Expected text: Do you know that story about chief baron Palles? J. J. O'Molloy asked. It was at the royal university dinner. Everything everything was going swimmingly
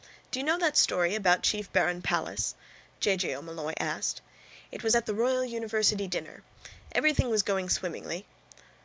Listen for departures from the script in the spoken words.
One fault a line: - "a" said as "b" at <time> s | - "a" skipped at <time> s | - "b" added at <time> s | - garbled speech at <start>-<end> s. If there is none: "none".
- "everything" skipped at 7.3 s